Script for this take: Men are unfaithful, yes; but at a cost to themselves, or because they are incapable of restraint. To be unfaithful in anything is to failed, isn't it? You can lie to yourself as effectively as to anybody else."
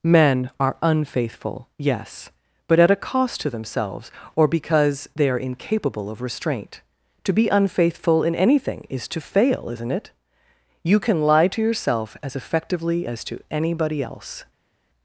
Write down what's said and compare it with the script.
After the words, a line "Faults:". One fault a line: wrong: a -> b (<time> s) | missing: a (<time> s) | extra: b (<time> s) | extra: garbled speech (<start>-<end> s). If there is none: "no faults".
Men are unfaithful, yes; but at a cost to themselves, or because they are incapable of restraint. To be unfaithful in anything is to fail, isn't it? You can lie to yourself as effectively as to anybody else."
Faults:
wrong: failed -> fail (9.2 s)